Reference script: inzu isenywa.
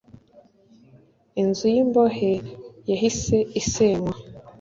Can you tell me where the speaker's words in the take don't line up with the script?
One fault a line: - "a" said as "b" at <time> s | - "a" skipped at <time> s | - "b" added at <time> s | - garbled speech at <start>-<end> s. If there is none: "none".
- "y'imbohe yahise" added at 1.7 s